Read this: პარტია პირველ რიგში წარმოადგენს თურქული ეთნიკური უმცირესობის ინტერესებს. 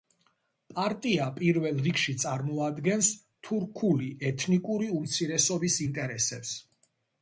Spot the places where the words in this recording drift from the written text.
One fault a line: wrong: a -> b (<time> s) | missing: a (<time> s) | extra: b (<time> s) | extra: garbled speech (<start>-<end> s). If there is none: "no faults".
no faults